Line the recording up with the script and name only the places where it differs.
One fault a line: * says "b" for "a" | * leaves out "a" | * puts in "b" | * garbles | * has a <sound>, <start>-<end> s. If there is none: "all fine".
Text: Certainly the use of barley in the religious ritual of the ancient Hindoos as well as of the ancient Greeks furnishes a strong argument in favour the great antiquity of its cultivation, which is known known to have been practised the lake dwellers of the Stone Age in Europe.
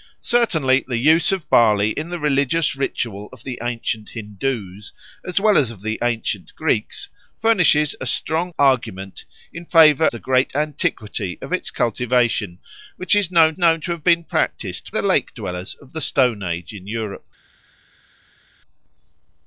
all fine